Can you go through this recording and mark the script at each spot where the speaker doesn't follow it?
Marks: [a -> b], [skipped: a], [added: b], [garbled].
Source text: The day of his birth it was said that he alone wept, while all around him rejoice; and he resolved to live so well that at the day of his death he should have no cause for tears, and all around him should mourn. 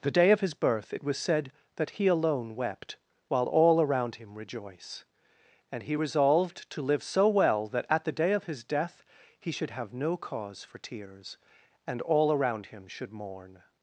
The day of his birth it was said that he alone wept, while all around him rejoice; and he resolved to live so well that at the day of his death he should have no cause for tears, and all around him should mourn.